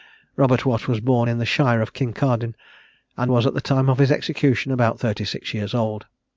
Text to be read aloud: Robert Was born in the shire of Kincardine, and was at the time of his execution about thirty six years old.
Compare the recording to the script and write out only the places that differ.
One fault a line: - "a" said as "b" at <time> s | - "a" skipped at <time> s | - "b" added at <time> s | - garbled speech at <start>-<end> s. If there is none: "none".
- "Watt" added at 0.7 s